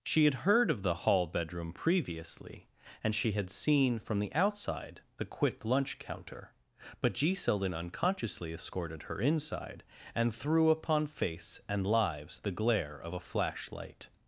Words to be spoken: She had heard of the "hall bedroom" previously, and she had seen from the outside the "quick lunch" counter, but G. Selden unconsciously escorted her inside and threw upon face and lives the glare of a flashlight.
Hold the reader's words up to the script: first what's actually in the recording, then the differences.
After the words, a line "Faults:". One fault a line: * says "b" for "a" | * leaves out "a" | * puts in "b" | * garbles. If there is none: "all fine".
She had heard of the "hall bedroom" previously, and she had seen from the outside the "quick lunch" counter, but G. Selden unconsciously escorted her inside and threw upon face and lives the glare of a flashlight.
Faults:
all fine